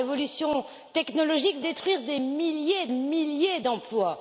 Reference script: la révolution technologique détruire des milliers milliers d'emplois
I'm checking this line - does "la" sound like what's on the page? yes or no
yes